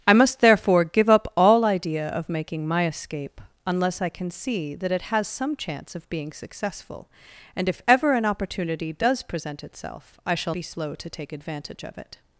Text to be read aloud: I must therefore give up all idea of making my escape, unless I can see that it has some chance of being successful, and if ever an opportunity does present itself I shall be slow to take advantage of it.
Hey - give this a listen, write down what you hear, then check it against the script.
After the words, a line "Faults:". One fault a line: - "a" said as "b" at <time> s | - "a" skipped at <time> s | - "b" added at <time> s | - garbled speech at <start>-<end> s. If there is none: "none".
I must therefore give up all idea of making my escape, unless I can see that it has some chance of being successful, and if ever an opportunity does present itself I shall be slow to take advantage of it.
Faults:
none